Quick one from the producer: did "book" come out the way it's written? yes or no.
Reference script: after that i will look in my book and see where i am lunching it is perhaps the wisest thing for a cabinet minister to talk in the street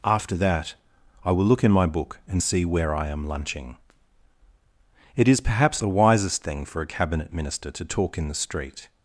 yes